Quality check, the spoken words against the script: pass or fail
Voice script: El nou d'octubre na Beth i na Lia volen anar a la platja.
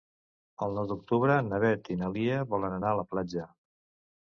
pass